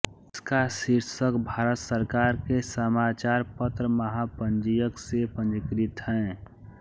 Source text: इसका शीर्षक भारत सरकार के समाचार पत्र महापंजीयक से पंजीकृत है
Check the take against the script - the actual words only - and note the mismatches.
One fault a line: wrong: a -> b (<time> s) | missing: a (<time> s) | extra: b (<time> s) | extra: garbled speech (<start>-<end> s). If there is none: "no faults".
no faults